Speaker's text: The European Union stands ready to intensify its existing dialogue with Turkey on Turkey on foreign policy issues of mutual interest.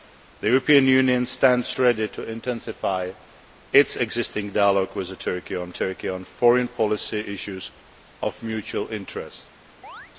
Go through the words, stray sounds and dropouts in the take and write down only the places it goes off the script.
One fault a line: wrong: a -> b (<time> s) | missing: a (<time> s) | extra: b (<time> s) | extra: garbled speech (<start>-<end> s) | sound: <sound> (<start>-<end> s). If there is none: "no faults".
sound: chirp (9.8-10.1 s)